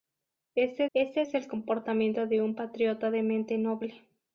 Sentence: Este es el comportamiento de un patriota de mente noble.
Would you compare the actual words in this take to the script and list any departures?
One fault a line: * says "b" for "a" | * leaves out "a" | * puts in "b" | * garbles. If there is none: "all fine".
* puts in "este"